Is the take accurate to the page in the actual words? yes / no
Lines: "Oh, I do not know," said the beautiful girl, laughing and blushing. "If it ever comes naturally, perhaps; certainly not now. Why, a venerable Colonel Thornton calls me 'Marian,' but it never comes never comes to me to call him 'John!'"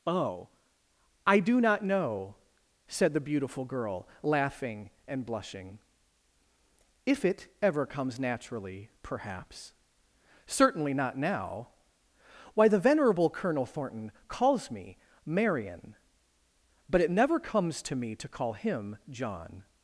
no